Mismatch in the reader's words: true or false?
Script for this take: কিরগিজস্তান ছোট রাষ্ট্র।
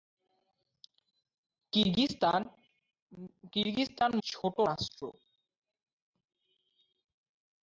false